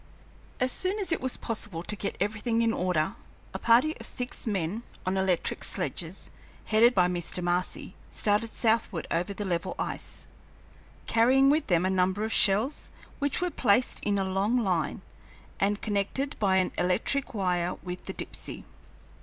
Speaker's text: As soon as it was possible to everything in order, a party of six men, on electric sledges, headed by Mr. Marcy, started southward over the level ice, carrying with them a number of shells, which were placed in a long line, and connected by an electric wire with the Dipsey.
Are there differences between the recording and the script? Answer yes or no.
yes